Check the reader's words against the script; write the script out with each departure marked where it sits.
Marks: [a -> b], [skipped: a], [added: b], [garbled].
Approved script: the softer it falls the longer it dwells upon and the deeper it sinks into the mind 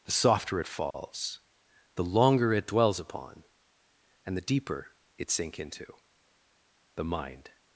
the softer it falls the longer it dwells upon and the deeper it [sinks -> sink] into the mind